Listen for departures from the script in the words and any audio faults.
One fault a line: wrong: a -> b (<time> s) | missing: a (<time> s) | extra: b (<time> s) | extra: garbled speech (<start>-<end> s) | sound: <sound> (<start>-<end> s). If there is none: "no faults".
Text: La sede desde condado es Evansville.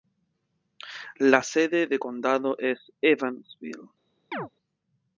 wrong: desde -> de (1.9 s)
sound: chirp (4.3-4.5 s)